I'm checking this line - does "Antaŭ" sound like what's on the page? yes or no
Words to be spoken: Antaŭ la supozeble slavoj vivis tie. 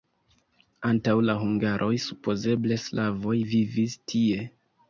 yes